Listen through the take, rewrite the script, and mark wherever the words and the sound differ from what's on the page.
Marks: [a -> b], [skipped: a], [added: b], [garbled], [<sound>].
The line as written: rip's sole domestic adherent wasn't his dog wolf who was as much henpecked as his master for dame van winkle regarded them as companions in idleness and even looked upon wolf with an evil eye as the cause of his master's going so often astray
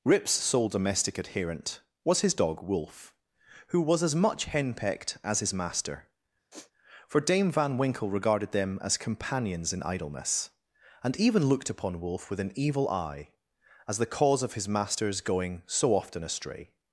rip's sole domestic adherent [wasn't -> was] his dog wolf who was as much henpecked as his master [sniff] for dame van winkle regarded them as companions in idleness and even looked upon wolf with an evil eye as the cause of his master's going so often astray